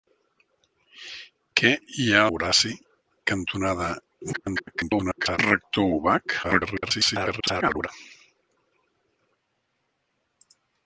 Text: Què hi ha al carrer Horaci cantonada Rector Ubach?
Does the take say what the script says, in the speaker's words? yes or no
no